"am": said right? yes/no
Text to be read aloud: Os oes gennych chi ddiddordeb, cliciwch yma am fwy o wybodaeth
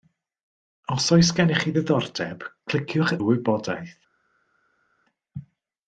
no